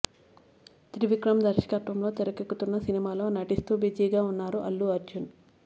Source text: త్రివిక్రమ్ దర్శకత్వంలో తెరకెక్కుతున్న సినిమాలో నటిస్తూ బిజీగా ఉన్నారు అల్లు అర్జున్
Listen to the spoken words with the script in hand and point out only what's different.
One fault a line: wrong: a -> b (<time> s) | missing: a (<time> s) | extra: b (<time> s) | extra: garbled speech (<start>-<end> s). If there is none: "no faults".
no faults